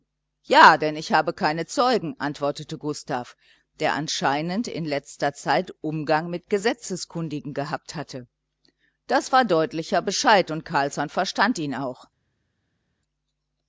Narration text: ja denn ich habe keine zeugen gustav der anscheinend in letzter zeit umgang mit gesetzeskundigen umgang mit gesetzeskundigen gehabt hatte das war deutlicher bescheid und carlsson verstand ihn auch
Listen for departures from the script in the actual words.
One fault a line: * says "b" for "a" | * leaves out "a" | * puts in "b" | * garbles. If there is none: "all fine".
* puts in "antwortete"
* leaves out "umgang mit gesetzeskundigen"